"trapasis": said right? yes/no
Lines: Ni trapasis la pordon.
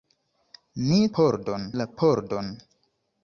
no